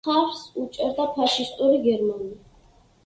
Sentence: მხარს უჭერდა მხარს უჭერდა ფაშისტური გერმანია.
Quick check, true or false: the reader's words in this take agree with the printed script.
false